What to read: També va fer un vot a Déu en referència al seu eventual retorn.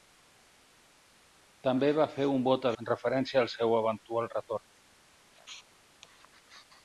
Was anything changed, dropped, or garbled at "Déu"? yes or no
yes